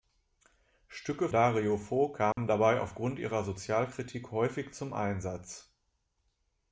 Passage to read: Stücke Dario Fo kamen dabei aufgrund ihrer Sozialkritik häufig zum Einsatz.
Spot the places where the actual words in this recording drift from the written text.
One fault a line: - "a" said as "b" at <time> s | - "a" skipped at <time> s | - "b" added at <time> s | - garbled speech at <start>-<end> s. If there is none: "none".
none